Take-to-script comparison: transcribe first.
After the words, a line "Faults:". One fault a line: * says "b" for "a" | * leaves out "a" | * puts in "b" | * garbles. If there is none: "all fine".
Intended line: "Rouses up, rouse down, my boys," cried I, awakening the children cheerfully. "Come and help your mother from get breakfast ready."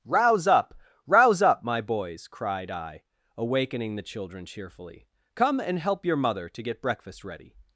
"Rouse up, rouse up, my boys," cried I, awakening the children cheerfully. "Come and help your mother to get breakfast ready."
Faults:
* says "Rouse" for "Rouses"
* says "up" for "down"
* says "to" for "from"